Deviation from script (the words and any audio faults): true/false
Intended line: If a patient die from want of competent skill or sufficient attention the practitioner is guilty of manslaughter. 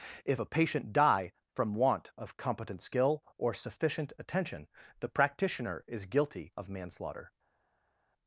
false